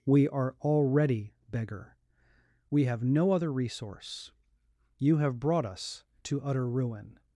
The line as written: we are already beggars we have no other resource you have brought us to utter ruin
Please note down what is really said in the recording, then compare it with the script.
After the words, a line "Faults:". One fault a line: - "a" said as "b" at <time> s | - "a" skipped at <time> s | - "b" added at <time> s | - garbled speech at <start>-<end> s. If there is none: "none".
we are already beggar we have no other resource you have brought us to utter ruin
Faults:
- "beggars" said as "beggar" at 1.5 s